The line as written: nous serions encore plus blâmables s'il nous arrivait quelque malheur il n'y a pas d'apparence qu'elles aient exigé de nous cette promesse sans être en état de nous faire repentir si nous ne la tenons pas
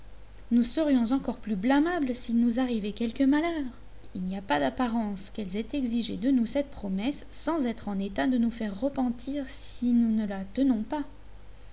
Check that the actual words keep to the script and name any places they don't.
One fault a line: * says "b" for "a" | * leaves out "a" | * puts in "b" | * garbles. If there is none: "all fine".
all fine